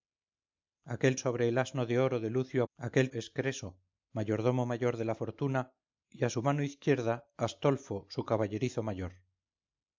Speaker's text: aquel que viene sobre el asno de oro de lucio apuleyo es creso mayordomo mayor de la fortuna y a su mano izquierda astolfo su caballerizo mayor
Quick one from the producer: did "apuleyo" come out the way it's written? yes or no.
no